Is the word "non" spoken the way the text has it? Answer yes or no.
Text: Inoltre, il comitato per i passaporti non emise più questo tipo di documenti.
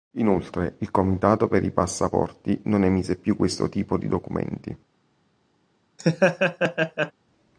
yes